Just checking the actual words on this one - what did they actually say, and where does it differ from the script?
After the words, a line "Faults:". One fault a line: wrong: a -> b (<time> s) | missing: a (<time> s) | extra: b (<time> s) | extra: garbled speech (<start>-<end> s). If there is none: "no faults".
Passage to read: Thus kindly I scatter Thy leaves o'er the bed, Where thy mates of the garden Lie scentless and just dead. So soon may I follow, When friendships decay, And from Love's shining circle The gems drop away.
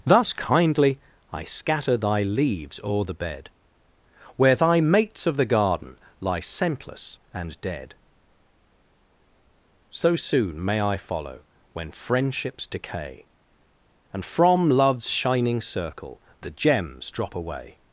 Thus kindly I scatter Thy leaves o'er the bed, Where thy mates of the garden Lie scentless and dead. So soon may I follow, When friendships decay, And from Love's shining circle The gems drop away.
Faults:
missing: just (7.6 s)